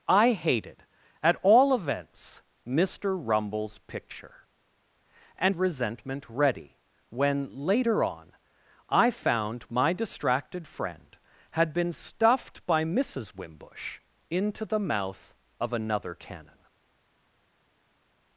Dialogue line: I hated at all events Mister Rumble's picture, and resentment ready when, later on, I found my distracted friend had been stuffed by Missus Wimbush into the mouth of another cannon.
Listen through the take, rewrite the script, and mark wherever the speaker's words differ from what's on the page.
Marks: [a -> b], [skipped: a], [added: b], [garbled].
I hated at all events Mister Rumble's picture, and resentment ready when, later on, I found my distracted friend had been stuffed by Missus Wimbush into the mouth of another cannon.